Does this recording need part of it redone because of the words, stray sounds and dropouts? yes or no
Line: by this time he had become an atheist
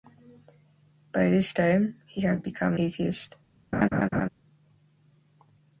yes